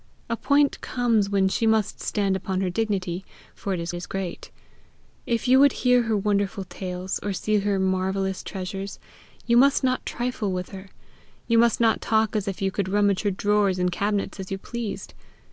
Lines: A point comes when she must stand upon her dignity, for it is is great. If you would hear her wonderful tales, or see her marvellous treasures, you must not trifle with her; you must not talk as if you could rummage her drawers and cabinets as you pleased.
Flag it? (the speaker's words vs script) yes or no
no